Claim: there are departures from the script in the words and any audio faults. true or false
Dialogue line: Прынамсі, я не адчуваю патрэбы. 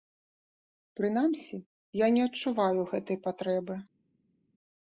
true